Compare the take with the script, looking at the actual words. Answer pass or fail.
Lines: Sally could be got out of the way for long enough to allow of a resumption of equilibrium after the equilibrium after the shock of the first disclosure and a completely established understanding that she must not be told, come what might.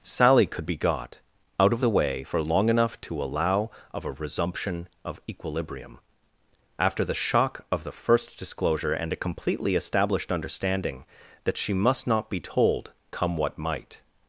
fail